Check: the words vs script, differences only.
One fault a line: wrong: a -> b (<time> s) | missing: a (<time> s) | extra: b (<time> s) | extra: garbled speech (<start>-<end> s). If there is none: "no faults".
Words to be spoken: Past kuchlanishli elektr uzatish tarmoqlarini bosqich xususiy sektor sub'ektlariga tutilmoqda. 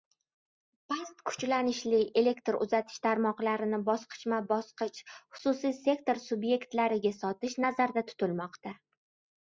extra: bosqichma (3.9 s)
extra: sotish nazarda (7.2 s)